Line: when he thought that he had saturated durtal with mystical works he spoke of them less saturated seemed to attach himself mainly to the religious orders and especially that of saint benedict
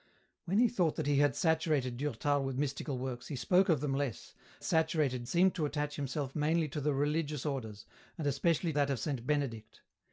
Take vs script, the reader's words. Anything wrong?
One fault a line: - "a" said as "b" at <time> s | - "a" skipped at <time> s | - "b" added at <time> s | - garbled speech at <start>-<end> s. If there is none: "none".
none